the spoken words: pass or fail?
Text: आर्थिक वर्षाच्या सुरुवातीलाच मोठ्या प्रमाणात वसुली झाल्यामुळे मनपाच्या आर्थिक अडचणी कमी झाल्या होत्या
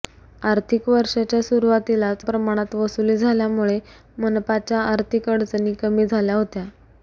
fail